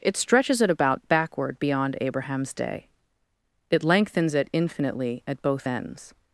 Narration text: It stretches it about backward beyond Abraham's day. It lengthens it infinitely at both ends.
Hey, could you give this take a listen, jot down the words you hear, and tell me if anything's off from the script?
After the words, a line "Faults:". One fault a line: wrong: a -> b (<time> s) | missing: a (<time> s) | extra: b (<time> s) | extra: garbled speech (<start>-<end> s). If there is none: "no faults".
It stretches it about backward beyond Abraham's day. It lengthens it infinitely at both ends.
Faults:
no faults